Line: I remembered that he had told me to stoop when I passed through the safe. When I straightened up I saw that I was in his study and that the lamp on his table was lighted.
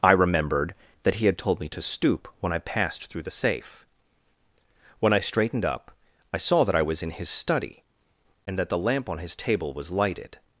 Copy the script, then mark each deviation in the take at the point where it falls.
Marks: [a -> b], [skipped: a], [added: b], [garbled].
I remembered that he had told me to stoop when I passed through the safe. When I straightened up I saw that I was in his study and that the lamp on his table was lighted.